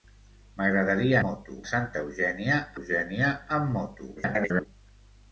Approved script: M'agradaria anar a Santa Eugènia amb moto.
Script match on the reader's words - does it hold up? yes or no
no